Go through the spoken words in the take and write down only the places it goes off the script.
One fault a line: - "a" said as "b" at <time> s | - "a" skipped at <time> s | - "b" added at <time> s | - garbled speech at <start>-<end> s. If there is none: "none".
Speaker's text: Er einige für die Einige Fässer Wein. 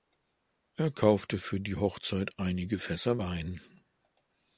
- "einige" said as "kaufte" at 0.9 s
- "Hochzeit" added at 1.8 s